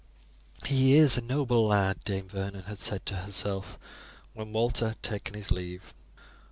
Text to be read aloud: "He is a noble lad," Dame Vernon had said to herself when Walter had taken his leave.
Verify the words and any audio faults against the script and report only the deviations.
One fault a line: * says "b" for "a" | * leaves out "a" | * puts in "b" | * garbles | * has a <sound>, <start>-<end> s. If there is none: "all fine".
all fine